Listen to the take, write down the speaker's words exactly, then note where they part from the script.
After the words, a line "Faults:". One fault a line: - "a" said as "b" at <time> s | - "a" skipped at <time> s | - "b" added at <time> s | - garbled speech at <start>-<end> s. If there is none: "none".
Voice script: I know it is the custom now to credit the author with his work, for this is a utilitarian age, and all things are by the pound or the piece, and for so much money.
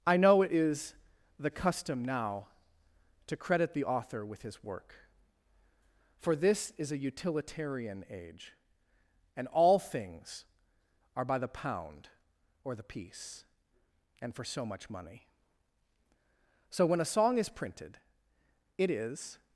I know it is the custom now to credit the author with his work, for this is a utilitarian age, and all things are by the pound or the piece, and for so much money. "So when a song is printed it is
Faults:
- "So when a song is printed it is" added at 16.7 s